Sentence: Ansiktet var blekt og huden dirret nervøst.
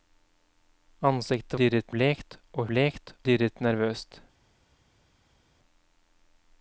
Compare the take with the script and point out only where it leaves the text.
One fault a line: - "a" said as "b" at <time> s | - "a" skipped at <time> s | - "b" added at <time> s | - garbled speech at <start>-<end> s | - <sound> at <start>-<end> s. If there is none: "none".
- "var" said as "dirret" at 1.6 s
- "huden" said as "blekt" at 2.7 s